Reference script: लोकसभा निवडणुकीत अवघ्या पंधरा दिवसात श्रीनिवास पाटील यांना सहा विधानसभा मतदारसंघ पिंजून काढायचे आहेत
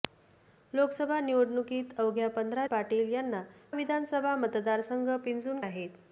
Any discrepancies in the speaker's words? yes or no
yes